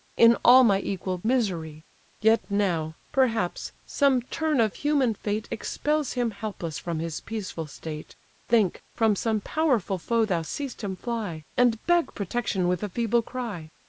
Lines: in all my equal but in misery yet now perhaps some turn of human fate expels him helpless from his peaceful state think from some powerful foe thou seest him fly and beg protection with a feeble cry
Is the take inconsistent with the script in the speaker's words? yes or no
yes